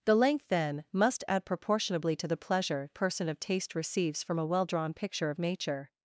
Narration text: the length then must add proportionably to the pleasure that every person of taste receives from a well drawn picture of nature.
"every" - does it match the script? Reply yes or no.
no